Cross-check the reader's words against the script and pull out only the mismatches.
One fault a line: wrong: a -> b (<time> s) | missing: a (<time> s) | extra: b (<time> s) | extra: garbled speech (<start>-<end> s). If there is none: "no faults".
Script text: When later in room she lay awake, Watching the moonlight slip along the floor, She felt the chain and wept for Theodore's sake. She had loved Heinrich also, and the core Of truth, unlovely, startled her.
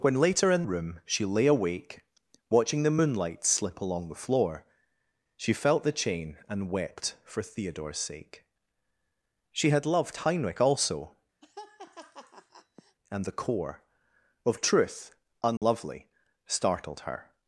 no faults